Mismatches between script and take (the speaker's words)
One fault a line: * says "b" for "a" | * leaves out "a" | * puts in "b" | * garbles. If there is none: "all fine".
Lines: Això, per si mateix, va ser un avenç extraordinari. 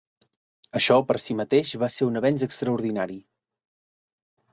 all fine